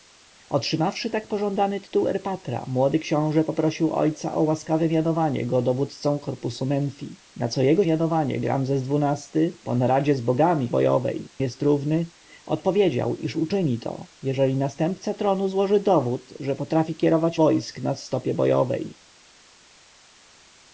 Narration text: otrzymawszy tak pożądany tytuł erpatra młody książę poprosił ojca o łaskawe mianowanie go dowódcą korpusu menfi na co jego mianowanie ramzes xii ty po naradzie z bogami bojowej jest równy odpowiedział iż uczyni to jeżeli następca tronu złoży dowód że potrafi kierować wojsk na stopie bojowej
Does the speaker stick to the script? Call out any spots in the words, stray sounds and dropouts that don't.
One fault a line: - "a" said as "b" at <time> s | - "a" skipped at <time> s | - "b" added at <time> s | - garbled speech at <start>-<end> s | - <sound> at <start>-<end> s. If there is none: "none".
none